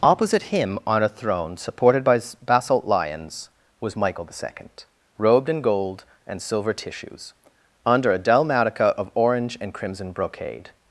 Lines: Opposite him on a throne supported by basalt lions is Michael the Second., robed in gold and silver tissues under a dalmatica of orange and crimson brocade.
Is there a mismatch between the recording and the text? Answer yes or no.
yes